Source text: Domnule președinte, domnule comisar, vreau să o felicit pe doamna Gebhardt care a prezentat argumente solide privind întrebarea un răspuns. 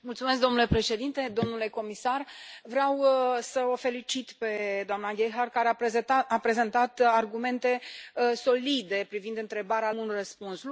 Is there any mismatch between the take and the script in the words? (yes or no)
no